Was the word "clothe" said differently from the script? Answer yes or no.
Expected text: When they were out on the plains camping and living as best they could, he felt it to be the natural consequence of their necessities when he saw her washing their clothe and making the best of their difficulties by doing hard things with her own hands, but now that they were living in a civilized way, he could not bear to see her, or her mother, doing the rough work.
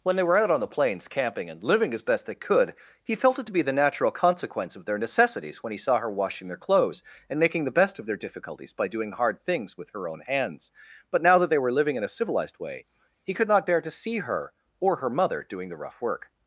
yes